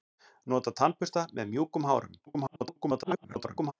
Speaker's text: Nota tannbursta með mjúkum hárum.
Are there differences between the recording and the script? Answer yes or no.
yes